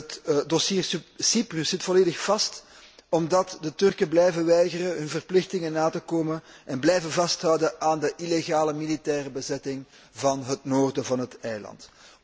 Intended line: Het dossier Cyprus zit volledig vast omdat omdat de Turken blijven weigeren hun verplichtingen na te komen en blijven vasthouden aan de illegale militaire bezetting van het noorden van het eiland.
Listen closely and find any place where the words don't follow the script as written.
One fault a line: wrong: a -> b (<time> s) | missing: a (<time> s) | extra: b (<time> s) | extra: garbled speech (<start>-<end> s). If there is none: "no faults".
missing: omdat (3.6 s)